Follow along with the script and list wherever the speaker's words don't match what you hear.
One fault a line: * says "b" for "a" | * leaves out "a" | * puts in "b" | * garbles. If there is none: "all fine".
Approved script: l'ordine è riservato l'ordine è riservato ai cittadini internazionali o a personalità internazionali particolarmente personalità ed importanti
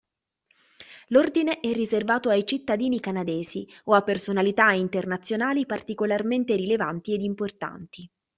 * leaves out "l'ordine è riservato"
* says "canadesi" for "internazionali"
* says "rilevanti" for "personalità"